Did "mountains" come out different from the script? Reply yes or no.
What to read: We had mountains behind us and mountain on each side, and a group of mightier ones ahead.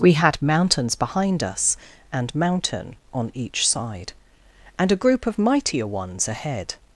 no